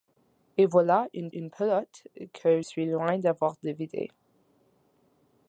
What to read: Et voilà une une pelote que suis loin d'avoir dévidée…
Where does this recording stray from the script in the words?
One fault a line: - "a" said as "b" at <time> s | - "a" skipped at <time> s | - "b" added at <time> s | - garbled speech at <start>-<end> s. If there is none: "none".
none